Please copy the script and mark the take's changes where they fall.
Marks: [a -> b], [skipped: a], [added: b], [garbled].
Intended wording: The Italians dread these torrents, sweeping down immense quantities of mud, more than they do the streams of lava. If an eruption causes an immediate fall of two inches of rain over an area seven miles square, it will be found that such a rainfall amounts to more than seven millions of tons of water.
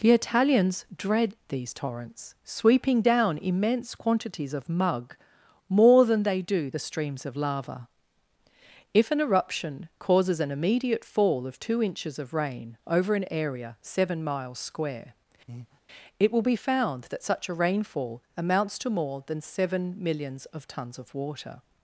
The Italians dread these torrents, sweeping down immense quantities of [mud, -> mug] more than they do the streams of lava. If an eruption causes an immediate fall of two inches of rain over an area seven miles square, it will be found that such a rainfall amounts to more than seven millions of tons of water.